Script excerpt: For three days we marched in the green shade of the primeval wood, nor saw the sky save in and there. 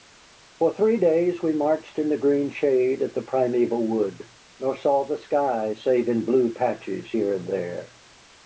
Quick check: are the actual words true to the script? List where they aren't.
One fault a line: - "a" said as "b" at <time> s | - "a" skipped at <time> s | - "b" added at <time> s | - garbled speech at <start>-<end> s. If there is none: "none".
- "blue patches here" added at 6.2 s